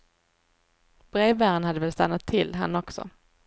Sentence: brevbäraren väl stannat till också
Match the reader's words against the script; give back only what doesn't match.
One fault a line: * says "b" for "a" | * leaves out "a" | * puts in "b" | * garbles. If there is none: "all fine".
* puts in "hade"
* puts in "han"